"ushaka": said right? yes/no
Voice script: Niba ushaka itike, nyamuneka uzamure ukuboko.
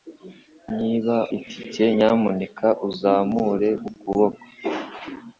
no